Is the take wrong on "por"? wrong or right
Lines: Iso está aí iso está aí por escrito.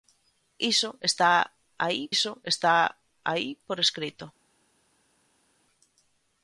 right